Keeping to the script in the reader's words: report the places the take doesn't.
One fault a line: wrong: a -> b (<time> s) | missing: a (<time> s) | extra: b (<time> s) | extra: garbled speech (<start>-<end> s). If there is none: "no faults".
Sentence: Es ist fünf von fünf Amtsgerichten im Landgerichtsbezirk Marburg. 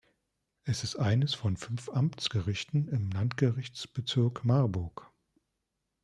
wrong: fünf -> eines (1.0 s)